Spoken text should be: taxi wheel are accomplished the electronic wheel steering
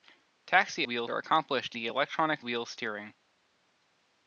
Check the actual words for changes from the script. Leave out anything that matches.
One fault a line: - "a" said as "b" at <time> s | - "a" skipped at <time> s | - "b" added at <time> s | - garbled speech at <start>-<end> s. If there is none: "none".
none